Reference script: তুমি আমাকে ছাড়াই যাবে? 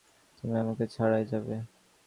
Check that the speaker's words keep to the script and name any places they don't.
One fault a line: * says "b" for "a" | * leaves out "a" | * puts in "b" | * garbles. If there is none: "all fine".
all fine